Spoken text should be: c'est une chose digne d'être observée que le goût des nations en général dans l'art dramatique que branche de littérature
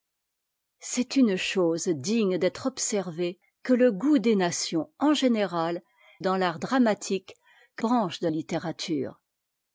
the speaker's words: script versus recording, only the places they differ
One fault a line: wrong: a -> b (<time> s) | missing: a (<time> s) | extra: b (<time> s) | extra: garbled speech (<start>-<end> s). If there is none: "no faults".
no faults